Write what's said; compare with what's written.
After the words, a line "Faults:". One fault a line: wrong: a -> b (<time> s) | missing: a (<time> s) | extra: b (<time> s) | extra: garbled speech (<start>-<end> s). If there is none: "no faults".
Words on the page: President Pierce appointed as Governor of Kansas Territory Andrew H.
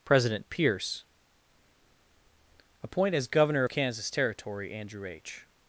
President Pierce appoint as Governor of Kansas Territory Andrew H.
Faults:
wrong: appointed -> appoint (2.8 s)